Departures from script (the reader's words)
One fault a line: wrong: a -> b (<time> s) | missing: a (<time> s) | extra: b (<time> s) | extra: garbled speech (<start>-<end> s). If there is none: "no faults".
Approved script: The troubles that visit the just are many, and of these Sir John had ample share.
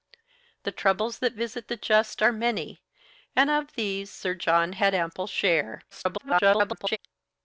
extra: garbled speech (5.9-7.0 s)